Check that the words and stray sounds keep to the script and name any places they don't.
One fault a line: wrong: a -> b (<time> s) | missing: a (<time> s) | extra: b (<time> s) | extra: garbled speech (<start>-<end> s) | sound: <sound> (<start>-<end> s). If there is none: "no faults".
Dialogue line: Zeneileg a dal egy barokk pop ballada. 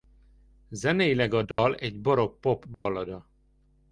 sound: dropout (1.5-1.6 s)
sound: dropout (2.7-2.9 s)